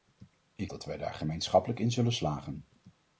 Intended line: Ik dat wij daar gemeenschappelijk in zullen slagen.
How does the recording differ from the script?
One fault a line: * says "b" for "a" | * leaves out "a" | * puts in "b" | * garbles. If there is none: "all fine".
all fine